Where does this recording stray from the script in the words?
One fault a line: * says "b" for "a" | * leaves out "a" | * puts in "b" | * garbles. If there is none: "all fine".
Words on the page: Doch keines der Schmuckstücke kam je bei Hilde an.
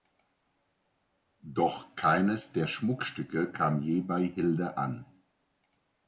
all fine